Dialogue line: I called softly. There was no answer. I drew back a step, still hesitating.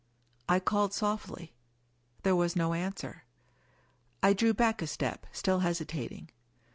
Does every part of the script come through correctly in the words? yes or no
yes